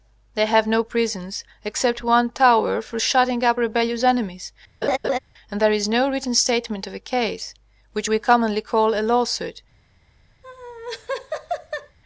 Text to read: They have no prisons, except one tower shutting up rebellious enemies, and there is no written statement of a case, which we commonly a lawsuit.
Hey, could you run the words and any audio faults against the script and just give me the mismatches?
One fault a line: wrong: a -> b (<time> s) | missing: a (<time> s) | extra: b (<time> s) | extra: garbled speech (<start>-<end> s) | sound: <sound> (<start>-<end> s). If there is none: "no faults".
extra: for (2.8 s)
sound: laugh (4.8-5.2 s)
extra: call (8.6 s)
sound: laugh (10.4-12.0 s)